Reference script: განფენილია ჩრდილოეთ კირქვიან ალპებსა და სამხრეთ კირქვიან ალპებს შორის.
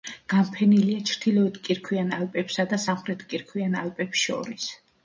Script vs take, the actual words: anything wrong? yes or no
no